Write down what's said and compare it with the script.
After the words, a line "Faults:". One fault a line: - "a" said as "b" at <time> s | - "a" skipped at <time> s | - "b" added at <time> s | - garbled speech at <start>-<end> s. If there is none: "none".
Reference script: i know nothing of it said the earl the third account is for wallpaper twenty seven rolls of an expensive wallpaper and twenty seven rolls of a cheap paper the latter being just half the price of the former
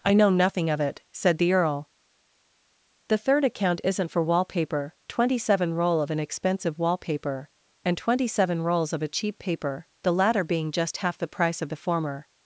i know nothing of it said the earl the third account isn't for wallpaper twenty seven roll of an expensive wallpaper and twenty seven rolls of a cheap paper the latter being just half the price of the former
Faults:
- "is" said as "isn't" at 3.8 s
- "rolls" said as "roll" at 5.7 s